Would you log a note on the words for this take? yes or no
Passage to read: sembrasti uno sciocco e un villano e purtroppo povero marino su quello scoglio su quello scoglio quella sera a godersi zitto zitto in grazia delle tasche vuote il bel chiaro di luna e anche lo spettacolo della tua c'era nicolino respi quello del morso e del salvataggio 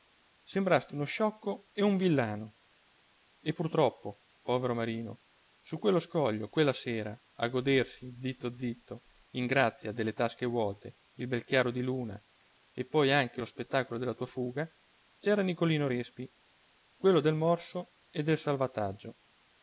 yes